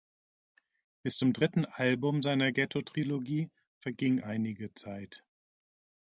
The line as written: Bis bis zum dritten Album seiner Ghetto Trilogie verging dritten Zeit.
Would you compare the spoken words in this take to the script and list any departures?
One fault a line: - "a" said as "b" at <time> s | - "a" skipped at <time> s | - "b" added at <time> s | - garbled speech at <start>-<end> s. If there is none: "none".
- "bis" skipped at 1.2 s
- "dritten" said as "einige" at 4.2 s